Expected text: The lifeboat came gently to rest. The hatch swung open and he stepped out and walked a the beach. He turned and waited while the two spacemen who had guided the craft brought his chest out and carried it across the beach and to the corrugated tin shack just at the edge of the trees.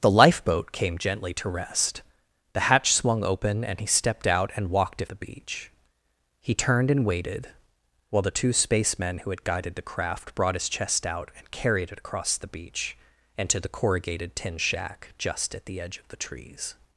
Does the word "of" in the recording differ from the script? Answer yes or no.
no